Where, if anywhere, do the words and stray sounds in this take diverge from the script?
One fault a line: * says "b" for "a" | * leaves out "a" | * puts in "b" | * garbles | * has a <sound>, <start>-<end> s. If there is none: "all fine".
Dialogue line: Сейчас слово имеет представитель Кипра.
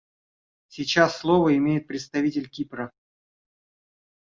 all fine